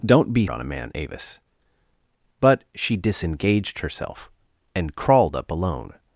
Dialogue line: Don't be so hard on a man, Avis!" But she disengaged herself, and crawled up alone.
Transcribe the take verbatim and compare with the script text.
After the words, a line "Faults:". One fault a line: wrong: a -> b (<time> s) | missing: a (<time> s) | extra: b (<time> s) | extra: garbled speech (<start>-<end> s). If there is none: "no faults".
Don't be on a man, Avis!" But she disengaged herself, and crawled up alone.
Faults:
missing: so hard (0.5 s)